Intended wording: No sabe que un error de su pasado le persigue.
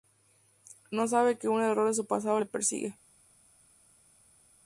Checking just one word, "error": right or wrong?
right